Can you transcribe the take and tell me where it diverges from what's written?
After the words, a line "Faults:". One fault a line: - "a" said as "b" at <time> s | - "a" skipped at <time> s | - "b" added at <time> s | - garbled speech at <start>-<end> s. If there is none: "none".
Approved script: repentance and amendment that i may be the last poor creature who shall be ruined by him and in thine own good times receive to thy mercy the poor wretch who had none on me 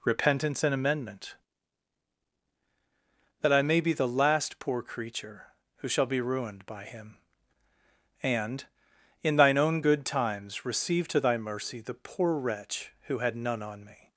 repentance and amendment that i may be the last poor creature who shall be ruined by him and in thine own good times receive to thy mercy the poor wretch who had none on me
Faults:
none